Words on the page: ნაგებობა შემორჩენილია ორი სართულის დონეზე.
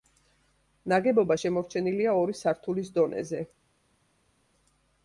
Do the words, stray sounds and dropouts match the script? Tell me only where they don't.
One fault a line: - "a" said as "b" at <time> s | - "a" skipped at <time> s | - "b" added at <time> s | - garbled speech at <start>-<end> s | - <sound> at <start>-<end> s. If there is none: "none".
none